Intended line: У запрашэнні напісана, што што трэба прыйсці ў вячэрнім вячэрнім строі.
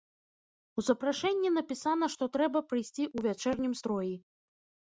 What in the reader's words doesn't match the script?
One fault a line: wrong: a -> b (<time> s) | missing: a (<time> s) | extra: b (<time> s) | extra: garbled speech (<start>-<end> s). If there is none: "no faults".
missing: што (2.3 s)
missing: вячэрнім (3.7 s)